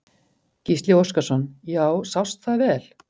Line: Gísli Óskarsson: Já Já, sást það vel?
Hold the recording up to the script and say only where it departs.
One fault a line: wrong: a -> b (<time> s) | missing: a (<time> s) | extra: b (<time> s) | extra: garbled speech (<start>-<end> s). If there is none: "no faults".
missing: Já (1.9 s)